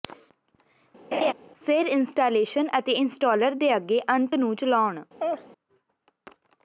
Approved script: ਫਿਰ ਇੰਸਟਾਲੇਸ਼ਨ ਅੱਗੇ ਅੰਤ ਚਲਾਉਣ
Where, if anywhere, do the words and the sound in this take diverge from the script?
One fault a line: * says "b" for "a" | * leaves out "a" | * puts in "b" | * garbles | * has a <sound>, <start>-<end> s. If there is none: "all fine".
* has a laugh, 1.1-1.3 s
* puts in "ਅਤੇ ਇੰਸਟਾਲਰ ਦੇ"
* puts in "ਨੂੰ"
* has a laugh, 5.2-5.5 s